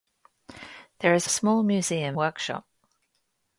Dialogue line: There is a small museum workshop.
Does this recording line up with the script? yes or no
yes